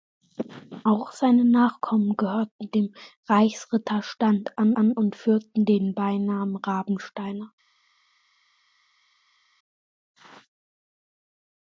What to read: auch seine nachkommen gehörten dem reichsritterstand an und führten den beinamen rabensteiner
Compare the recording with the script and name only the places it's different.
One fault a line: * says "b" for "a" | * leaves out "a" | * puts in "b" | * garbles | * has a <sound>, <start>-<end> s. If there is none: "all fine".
* puts in "an"